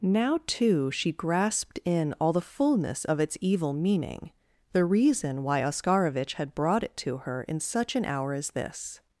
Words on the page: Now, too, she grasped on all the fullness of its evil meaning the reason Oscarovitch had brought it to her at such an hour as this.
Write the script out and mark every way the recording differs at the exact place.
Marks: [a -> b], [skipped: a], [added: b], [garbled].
Now, too, she grasped [on -> in] all the fullness of its evil meaning the reason [added: why] Oscarovitch had brought it to her [at -> in] such an hour as this.